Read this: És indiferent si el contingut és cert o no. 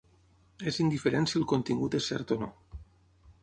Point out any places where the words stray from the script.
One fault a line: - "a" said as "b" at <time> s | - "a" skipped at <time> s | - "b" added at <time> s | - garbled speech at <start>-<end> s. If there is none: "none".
none